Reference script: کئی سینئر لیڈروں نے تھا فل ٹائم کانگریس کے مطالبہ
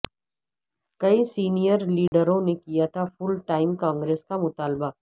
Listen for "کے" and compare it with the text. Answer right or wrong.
wrong